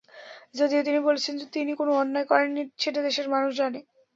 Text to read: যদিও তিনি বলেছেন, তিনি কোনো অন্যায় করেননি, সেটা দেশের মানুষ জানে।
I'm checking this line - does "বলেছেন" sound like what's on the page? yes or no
yes